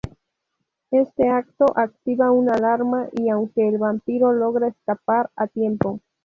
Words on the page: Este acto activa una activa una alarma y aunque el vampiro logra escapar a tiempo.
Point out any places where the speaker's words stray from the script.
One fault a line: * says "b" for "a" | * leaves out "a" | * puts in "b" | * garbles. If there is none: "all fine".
* leaves out "activa una"